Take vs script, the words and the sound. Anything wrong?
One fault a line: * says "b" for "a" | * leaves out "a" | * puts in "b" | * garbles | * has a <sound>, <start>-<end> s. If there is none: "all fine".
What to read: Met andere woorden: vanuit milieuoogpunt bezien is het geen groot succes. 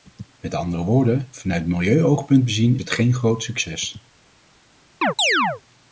* leaves out "is"
* has a chirp, 5.0-5.6 s